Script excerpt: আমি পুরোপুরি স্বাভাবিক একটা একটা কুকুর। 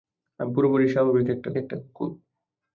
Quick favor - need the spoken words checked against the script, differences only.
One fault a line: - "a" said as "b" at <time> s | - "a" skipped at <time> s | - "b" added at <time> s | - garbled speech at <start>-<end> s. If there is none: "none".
none